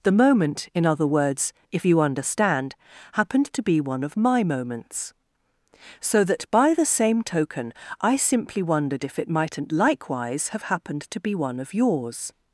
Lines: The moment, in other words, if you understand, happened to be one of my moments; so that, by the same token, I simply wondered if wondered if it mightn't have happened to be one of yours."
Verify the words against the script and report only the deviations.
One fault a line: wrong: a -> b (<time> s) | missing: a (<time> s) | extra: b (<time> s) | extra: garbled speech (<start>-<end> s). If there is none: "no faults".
missing: wondered if (9.2 s)
extra: likewise (9.7 s)